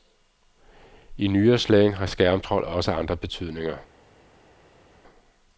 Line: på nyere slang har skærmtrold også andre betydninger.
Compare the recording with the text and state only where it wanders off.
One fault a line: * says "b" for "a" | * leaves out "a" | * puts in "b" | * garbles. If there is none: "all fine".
* says "I" for "på"